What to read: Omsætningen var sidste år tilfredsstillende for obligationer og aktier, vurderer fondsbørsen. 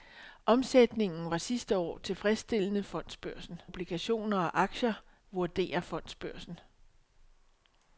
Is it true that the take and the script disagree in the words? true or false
true